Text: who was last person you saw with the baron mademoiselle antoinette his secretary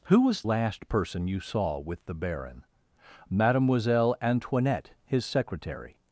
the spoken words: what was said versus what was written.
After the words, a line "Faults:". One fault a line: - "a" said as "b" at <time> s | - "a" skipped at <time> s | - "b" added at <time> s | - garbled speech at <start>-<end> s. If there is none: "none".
who was last person you saw with the baron mademoiselle antoinette his secretary
Faults:
none